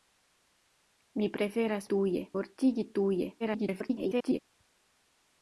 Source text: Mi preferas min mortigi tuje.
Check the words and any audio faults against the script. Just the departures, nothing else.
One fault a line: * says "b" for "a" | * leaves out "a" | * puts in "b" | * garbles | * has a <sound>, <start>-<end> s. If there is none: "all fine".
* says "tuje" for "min"
* garbles